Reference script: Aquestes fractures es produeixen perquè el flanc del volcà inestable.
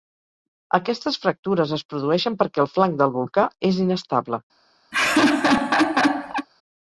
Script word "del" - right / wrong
right